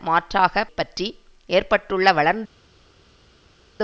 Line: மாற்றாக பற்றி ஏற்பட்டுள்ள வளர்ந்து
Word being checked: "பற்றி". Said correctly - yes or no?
yes